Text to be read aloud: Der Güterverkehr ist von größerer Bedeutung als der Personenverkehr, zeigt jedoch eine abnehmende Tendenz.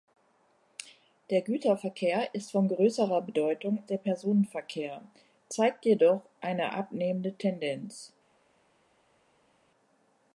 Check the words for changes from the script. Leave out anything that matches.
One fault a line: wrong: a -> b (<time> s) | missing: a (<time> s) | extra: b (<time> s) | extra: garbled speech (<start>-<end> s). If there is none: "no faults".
missing: als (3.8 s)